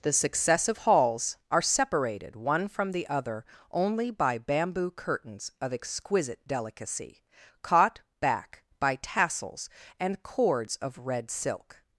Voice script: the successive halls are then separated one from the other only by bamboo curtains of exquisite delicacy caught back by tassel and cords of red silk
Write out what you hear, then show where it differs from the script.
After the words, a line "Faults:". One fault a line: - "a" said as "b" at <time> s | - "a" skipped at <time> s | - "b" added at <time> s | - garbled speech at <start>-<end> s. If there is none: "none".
the successive halls are separated one from the other only by bamboo curtains of exquisite delicacy caught back by tassels and cords of red silk
Faults:
- "then" skipped at 1.6 s
- "tassel" said as "tassels" at 9.0 s